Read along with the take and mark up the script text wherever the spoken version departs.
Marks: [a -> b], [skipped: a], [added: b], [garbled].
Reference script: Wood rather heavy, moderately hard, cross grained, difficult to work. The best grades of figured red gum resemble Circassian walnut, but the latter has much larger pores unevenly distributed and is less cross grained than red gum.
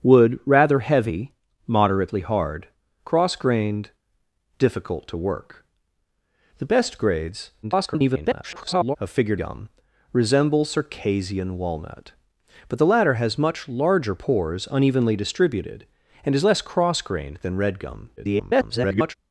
Wood rather heavy, moderately hard, cross grained, difficult to work. The best grades [garbled] of figured [skipped: red] gum resemble Circassian walnut, but the latter has much larger pores unevenly distributed and is less cross grained than red gum. [garbled]